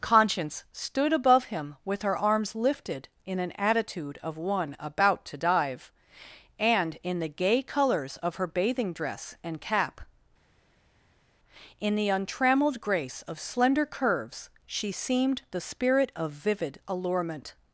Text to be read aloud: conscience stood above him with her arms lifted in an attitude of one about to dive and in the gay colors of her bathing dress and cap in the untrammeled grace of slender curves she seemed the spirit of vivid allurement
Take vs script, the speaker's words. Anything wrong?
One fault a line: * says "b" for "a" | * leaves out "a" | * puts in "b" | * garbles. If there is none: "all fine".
all fine